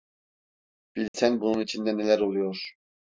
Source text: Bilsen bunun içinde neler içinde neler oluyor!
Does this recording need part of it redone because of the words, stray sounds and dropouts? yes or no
yes